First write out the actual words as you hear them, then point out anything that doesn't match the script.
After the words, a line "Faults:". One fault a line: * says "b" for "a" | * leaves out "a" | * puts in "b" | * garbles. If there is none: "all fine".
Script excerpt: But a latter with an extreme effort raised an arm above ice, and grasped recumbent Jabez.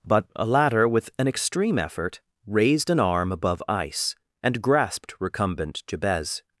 But a latter with an extreme effort raised an arm above ice, and grasped recumbent Jabez.
Faults:
all fine